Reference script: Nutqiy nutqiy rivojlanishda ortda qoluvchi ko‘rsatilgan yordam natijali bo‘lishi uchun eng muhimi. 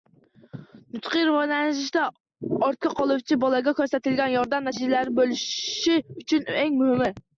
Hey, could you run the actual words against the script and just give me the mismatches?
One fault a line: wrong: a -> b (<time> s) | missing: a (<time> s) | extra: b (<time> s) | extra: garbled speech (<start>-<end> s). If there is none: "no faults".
missing: nutqiy (1.2 s)
extra: bolaga (3.4 s)